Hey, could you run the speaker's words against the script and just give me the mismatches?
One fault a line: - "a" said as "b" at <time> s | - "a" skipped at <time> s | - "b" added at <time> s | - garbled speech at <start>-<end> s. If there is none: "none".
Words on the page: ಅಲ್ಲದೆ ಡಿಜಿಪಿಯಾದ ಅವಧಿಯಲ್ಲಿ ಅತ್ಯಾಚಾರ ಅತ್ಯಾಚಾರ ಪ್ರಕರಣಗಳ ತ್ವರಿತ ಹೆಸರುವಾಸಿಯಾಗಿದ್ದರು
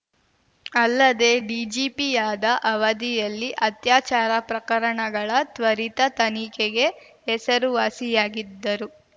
- "ಅತ್ಯಾಚಾರ" skipped at 4.3 s
- "ತನಿಖೆಗೆ" added at 6.2 s